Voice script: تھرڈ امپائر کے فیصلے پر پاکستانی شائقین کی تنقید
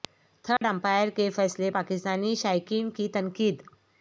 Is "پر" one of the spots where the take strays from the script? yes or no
yes